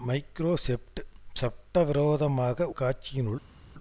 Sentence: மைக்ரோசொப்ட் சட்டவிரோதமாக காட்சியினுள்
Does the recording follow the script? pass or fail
pass